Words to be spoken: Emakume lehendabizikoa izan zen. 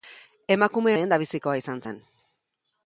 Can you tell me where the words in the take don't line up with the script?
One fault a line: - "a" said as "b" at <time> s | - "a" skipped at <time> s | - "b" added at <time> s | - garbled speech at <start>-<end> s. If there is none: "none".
none